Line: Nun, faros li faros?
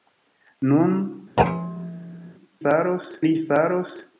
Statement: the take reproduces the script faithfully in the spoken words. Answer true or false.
true